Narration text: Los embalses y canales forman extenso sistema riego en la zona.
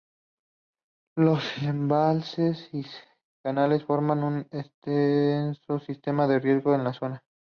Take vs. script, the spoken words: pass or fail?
fail